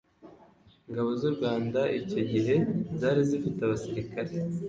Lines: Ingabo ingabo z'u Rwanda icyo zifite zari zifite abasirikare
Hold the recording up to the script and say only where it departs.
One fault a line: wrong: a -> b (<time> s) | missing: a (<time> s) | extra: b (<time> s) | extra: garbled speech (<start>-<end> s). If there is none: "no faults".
missing: ingabo (1.1 s)
wrong: zifite -> gihe (2.3 s)